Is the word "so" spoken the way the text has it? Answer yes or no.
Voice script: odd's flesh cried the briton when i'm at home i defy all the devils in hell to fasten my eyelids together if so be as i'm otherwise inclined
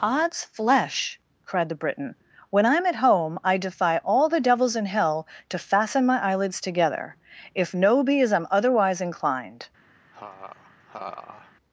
no